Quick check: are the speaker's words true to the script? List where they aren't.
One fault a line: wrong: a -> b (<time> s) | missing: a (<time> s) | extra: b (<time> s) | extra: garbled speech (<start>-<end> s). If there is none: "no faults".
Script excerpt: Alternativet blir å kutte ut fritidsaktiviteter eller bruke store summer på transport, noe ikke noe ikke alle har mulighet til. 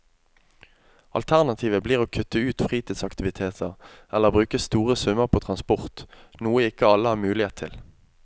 missing: noe ikke (6.9 s)